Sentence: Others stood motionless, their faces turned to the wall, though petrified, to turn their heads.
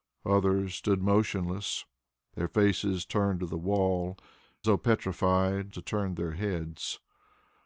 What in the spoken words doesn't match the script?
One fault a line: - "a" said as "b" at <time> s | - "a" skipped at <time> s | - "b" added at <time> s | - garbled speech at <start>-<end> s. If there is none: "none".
none